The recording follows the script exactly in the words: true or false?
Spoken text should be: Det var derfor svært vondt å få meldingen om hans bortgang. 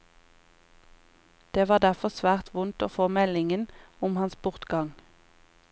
true